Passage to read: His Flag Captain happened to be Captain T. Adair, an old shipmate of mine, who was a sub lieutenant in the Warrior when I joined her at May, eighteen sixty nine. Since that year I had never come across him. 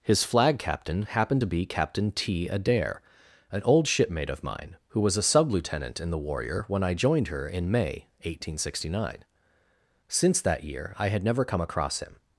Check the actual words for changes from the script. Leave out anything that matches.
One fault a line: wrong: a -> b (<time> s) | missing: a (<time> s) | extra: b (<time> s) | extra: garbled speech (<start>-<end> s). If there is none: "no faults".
wrong: at -> in (7.5 s)